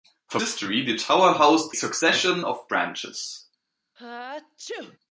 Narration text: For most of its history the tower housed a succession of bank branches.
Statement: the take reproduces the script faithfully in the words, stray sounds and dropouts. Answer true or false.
false